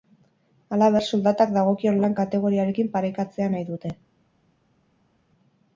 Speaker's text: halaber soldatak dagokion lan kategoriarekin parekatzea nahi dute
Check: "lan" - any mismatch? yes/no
no